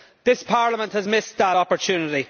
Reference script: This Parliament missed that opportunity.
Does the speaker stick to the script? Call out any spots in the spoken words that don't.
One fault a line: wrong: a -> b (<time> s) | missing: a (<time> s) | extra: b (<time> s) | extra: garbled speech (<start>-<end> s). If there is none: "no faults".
extra: has (0.9 s)